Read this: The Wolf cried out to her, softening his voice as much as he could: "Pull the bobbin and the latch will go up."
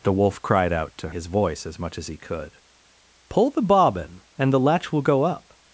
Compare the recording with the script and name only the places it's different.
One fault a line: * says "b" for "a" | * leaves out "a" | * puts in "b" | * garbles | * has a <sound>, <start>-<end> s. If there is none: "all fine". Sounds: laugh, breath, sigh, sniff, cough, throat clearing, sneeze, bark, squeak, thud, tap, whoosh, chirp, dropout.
* leaves out "her softening"